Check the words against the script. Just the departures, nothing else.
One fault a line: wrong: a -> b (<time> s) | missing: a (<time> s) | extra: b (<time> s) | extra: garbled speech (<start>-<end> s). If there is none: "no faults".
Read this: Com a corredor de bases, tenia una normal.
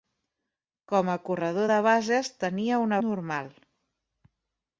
no faults